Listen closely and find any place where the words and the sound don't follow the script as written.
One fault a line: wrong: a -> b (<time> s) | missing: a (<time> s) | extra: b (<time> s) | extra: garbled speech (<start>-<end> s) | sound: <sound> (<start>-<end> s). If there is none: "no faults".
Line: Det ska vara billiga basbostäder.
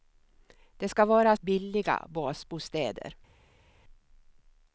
no faults